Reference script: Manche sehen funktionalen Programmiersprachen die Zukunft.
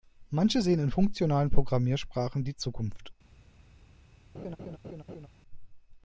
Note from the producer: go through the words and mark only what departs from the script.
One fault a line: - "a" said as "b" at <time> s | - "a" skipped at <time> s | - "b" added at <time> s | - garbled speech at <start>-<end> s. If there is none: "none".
- "in" added at 0.8 s